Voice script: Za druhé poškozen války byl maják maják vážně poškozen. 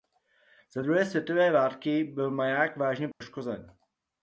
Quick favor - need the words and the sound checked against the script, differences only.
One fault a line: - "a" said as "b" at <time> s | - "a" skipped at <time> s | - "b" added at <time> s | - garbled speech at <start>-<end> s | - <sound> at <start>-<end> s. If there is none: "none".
- "poškozen" said as "světové" at 1.1 s
- "maják" skipped at 2.8 s
- dropout at 3.1-3.2 s